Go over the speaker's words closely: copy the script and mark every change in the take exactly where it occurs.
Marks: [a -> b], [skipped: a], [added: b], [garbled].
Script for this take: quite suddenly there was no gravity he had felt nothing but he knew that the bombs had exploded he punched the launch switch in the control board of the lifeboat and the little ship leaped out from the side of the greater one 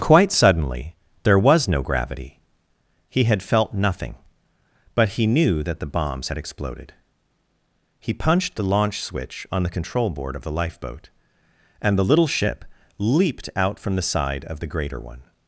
quite suddenly there was no gravity he had felt nothing but he knew that the bombs had exploded he punched the launch switch [in -> on] the control board of the lifeboat and the little ship leaped out from the side of the greater one